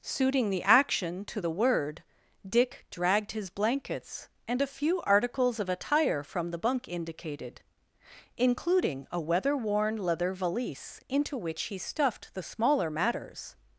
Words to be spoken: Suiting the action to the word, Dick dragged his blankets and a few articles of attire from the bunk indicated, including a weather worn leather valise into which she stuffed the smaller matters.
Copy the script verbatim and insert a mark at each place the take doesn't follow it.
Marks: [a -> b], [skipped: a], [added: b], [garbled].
Suiting the action to the word, Dick dragged his blankets and a few articles of attire from the bunk indicated, including a weather worn leather valise into which [she -> he] stuffed the smaller matters.